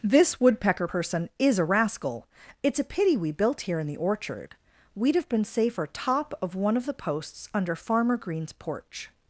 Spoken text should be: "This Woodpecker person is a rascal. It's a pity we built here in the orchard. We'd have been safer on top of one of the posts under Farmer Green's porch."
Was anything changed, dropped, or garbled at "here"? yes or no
no